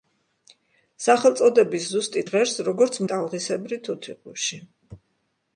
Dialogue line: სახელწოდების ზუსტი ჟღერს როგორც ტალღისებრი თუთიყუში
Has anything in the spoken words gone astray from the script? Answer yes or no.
no